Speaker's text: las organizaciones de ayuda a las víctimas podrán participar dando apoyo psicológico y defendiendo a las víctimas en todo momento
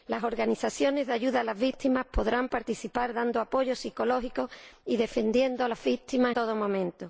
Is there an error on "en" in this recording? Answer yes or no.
yes